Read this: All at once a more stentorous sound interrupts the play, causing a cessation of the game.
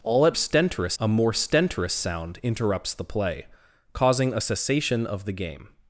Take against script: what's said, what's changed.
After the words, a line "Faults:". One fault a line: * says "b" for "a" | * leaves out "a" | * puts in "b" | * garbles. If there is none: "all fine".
All at stentorous a more stentorous sound interrupts the play, causing a cessation of the game.
Faults:
* says "stentorous" for "once"